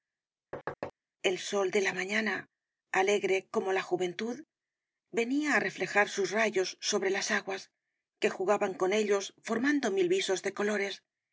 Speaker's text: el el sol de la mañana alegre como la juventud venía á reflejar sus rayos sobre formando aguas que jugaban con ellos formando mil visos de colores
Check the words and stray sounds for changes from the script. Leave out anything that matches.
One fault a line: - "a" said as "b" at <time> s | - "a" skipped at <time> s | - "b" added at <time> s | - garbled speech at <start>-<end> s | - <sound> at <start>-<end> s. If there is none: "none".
- thud at 0.5-0.9 s
- "el" skipped at 1.4 s
- "formando" said as "las" at 7.2 s